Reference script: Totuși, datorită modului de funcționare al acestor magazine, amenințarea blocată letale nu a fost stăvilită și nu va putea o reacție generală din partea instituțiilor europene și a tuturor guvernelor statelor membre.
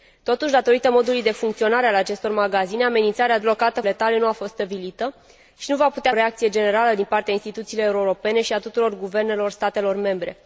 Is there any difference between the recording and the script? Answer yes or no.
no